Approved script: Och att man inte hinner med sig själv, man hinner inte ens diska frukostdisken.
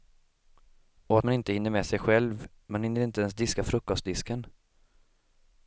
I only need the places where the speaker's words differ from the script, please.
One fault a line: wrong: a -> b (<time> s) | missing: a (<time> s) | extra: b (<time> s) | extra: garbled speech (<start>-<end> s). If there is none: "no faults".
no faults